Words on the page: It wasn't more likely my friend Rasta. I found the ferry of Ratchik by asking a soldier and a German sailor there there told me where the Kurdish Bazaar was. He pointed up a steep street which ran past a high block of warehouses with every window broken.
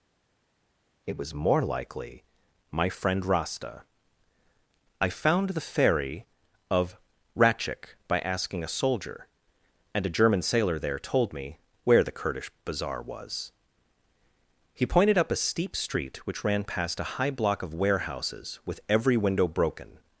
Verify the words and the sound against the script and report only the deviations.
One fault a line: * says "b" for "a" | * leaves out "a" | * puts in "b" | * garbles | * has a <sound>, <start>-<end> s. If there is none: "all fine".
* says "was" for "wasn't"
* leaves out "there"